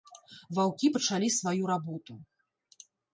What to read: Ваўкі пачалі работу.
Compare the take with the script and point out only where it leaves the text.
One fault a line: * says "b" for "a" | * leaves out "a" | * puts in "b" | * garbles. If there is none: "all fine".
* puts in "сваю"